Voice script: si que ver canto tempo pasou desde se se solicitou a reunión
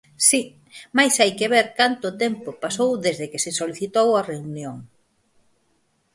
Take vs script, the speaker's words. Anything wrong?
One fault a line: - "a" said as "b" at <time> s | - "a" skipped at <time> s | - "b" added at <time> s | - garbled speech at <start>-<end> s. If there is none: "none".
- "mais hai" added at 1.0 s
- "se" said as "que" at 3.3 s